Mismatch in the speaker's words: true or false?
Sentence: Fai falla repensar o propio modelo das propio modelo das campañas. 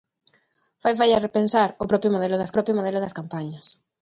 false